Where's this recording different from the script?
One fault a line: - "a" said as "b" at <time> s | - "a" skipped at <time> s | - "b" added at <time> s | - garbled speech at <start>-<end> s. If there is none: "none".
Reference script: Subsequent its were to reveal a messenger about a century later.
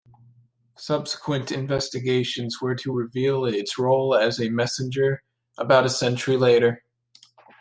- "its" said as "investigations" at 1.5 s
- "its role as" added at 3.5 s